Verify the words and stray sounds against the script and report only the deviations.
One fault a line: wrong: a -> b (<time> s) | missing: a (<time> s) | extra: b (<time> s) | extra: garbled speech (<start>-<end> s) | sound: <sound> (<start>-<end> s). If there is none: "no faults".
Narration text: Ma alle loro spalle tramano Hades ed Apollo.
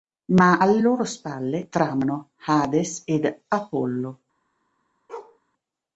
sound: bark (5.1-5.4 s)